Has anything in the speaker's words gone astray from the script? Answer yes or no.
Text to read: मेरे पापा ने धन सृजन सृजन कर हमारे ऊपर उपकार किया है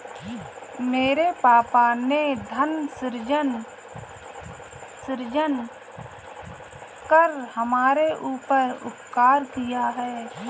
no